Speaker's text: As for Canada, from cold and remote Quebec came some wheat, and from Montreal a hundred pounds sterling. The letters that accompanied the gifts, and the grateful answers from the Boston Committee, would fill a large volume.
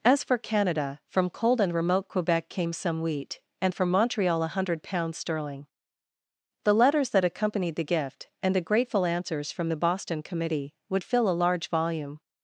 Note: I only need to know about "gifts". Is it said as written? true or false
false